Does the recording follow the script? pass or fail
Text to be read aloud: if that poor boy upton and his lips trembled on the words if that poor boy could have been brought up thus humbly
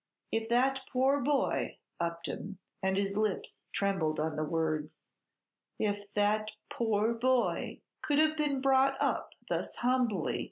pass